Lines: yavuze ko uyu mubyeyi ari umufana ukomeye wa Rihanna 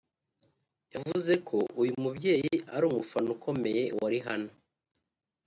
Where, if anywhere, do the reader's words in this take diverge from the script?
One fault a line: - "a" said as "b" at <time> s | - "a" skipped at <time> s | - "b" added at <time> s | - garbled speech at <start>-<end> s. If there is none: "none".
none